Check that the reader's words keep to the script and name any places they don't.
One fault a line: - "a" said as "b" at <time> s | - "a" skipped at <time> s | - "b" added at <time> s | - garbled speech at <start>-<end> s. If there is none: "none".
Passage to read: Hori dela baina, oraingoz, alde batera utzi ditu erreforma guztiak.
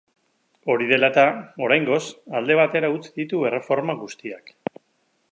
- "baina" said as "eta" at 1.1 s